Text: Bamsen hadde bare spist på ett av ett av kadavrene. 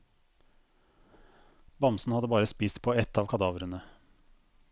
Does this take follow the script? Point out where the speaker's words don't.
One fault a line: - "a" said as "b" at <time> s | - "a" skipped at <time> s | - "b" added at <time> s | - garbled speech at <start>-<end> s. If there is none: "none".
- "ett av" skipped at 3.3 s